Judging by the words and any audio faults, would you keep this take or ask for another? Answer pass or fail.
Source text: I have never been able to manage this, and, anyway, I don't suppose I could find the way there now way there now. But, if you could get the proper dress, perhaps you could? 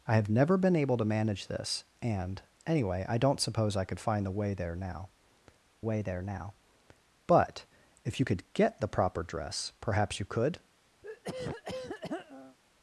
fail